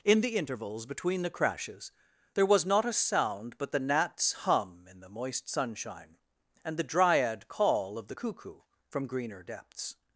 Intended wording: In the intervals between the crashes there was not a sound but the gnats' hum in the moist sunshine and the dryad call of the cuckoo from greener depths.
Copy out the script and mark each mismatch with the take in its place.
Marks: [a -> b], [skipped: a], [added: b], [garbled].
In the intervals between the crashes there was not a sound but the gnats' hum in the moist sunshine and the dryad call of the cuckoo from greener depths.